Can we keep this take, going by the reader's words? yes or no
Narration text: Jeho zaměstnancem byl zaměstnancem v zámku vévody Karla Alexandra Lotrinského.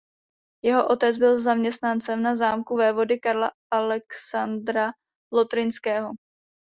no